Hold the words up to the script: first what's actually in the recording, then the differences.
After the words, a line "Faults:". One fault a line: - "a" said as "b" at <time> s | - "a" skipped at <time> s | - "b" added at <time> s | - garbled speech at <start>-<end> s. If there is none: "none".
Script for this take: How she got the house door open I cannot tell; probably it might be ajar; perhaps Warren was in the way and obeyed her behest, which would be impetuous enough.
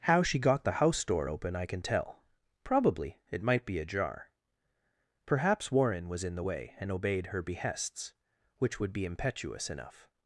How she got the house door open I can tell; probably it might be ajar; perhaps Warren was in the way and obeyed her behests, which would be impetuous enough.
Faults:
- "cannot" said as "can" at 1.6 s
- "behest" said as "behests" at 7.4 s